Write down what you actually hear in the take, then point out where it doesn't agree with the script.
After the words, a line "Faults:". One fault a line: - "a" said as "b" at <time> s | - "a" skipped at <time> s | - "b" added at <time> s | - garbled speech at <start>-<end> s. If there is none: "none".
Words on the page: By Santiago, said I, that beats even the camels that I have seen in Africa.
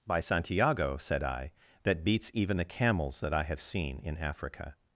By Santiago, said I, that beats even the camels that I have seen in Africa.
Faults:
none